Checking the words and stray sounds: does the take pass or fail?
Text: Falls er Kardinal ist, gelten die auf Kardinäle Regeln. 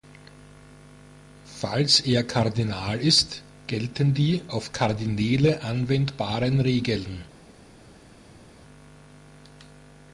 fail